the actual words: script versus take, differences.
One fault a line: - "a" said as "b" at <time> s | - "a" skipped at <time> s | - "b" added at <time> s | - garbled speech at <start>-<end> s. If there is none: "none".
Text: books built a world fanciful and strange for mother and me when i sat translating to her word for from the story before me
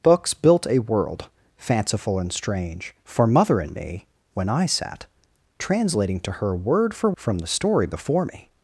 none